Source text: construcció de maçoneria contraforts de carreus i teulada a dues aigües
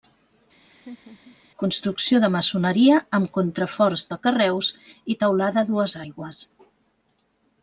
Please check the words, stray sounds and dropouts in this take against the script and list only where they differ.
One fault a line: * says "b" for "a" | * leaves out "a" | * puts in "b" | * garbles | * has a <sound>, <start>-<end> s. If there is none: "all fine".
* has a laugh, 0.6-1.4 s
* puts in "amb"